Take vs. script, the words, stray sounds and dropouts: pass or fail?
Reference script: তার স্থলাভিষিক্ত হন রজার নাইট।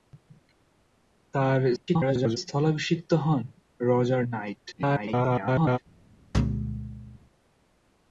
fail